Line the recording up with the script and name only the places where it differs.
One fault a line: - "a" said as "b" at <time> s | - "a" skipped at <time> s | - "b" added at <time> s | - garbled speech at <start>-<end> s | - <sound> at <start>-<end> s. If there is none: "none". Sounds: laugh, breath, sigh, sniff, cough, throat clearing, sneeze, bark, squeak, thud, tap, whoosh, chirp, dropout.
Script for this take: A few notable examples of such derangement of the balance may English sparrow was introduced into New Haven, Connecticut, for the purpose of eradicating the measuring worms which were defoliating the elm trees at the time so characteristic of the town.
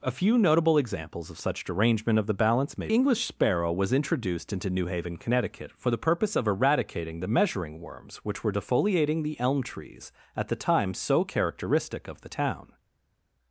none